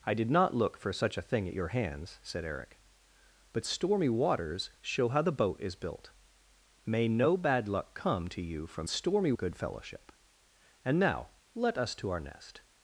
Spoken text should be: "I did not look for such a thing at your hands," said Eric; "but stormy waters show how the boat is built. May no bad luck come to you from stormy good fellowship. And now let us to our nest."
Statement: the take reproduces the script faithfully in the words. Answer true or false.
true